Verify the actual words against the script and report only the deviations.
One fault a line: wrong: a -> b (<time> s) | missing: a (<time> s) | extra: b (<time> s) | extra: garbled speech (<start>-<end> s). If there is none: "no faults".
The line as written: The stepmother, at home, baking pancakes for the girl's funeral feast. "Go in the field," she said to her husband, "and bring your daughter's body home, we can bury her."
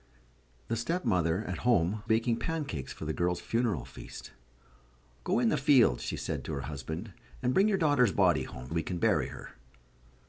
no faults